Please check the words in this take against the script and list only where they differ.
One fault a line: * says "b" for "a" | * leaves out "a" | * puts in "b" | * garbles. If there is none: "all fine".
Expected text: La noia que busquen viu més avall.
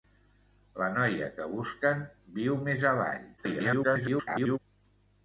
* garbles